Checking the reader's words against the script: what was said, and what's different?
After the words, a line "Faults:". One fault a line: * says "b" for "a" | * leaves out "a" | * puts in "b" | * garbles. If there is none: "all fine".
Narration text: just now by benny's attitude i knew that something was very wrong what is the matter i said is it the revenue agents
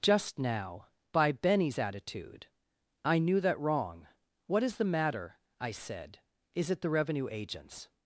just now by benny's attitude i knew that wrong what is the matter i said is it the revenue agents
Faults:
* leaves out "something was very"